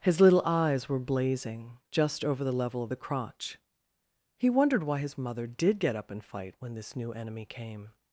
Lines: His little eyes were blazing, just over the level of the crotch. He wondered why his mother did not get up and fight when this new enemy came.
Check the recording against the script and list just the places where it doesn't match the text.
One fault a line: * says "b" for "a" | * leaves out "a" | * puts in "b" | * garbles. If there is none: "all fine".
* leaves out "not"